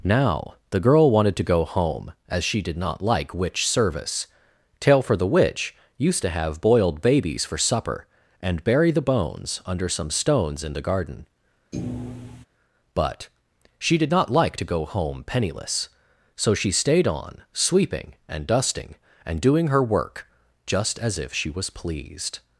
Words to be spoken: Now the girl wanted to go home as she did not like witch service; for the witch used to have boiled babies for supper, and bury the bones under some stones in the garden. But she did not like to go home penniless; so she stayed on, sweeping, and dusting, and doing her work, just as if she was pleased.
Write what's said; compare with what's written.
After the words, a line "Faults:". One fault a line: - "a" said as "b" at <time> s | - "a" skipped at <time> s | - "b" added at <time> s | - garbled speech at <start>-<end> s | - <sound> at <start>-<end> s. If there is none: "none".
Now the girl wanted to go home as she did not like witch service; tail for the witch used to have boiled babies for supper, and bury the bones under some stones in the garden. But she did not like to go home penniless; so she stayed on, sweeping, and dusting, and doing her work, just as if she was pleased.
Faults:
- "tail" added at 4.8 s
- thud at 11.7-12.5 s